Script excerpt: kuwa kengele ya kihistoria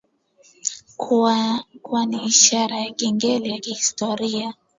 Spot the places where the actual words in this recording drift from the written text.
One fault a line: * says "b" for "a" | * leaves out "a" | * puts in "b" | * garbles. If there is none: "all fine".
* puts in "ni ishara ya"